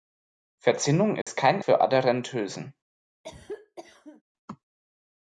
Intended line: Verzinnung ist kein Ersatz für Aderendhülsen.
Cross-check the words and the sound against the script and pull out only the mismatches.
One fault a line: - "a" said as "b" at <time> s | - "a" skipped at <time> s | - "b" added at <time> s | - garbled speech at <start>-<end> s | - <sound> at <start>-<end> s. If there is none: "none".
- dropout at 1.2-1.3 s
- "Ersatz" skipped at 1.6 s
- cough at 3.2-4.2 s